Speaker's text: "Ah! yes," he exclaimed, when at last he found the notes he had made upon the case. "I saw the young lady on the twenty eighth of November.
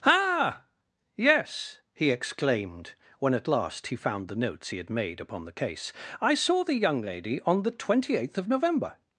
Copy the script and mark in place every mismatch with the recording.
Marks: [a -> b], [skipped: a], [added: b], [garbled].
"Ah! yes," he exclaimed, when at last he found the notes he had made upon the case. "I saw the young lady on the twenty eighth of November.